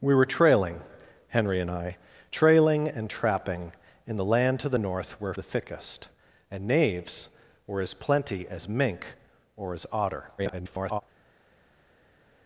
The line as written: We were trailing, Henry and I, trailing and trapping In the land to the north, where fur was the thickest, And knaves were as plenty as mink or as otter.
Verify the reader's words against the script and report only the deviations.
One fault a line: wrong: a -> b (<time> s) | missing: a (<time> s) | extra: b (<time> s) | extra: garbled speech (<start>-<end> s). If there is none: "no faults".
missing: fur was (5.3 s)
extra: garbled speech (10.4-11.0 s)